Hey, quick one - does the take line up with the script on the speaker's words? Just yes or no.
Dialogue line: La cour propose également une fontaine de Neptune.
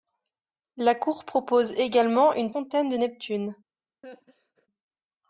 yes